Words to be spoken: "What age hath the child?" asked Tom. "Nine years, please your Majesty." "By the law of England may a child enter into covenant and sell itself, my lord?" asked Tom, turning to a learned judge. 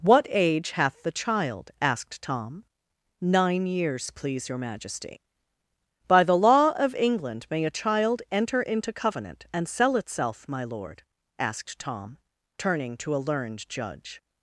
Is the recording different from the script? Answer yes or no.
no